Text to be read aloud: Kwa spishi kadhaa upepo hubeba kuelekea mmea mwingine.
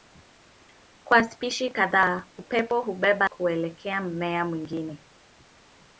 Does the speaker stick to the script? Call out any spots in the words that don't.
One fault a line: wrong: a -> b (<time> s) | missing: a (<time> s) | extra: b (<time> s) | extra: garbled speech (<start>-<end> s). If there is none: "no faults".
no faults